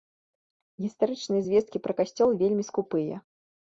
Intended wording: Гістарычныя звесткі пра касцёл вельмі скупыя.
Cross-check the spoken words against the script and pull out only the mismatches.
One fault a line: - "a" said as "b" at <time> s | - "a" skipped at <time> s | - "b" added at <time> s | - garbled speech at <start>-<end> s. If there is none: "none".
none